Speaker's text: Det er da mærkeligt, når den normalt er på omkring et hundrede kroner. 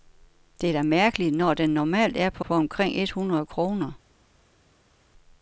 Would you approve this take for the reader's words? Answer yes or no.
no